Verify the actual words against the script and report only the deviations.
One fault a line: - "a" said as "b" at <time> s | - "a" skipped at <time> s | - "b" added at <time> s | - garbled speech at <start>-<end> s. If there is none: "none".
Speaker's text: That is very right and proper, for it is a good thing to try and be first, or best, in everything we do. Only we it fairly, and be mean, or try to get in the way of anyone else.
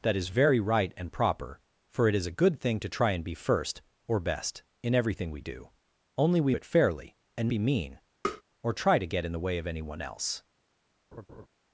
none